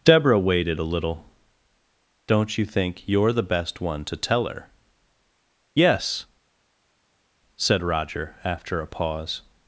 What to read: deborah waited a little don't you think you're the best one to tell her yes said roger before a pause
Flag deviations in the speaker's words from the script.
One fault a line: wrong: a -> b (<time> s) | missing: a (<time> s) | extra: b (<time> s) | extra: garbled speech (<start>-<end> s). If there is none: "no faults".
wrong: before -> after (8.4 s)